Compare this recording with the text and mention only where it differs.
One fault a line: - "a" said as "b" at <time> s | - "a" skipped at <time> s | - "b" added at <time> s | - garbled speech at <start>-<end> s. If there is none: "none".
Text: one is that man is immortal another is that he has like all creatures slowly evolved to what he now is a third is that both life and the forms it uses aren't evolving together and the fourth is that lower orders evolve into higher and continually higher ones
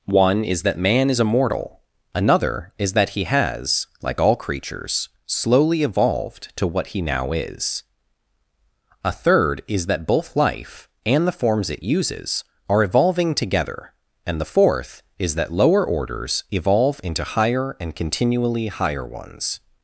- "aren't" said as "are" at 12.7 s